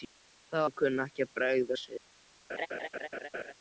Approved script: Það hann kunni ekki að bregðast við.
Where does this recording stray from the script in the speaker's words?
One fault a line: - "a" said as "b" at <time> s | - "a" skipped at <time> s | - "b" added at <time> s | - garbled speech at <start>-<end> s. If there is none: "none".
none